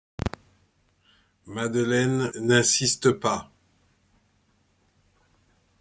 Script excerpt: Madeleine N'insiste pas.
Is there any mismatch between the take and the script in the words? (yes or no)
no